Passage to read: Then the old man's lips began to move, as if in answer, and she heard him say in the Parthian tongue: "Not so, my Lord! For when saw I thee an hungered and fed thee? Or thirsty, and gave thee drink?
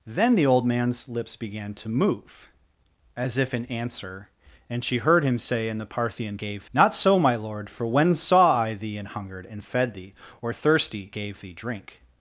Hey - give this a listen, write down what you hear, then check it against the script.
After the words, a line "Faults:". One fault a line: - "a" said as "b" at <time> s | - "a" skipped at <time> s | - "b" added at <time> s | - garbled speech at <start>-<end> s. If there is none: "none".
Then the old man's lips began to move, as if in answer, and she heard him say in the Parthian gave: "Not so, my Lord! For when saw I thee an hungered and fed thee? Or thirsty, gave thee drink?
Faults:
- "tongue" said as "gave" at 6.4 s
- "and" skipped at 11.1 s